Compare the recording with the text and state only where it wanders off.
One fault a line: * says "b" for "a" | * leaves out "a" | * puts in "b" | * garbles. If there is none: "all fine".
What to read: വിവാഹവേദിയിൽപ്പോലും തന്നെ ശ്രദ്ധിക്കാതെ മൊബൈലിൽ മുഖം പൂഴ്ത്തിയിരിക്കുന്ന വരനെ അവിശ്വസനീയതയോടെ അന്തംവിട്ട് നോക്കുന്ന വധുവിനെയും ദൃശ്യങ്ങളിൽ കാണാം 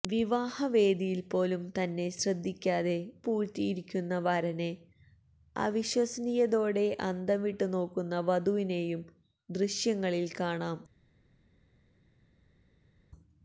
* leaves out "മൊബൈലിൽ മുഖം"